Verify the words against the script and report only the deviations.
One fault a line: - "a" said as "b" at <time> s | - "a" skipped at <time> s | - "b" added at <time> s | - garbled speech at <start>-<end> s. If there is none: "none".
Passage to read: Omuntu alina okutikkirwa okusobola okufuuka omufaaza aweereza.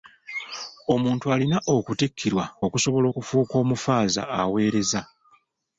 none